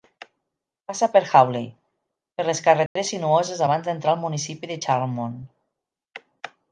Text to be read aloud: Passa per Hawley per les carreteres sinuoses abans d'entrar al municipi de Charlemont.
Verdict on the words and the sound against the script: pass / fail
fail